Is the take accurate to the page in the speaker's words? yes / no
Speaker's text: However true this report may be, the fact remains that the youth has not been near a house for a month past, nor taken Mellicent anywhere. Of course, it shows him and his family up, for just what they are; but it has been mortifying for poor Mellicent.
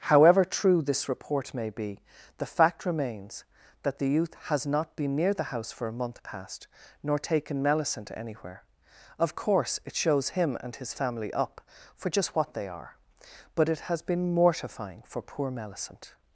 no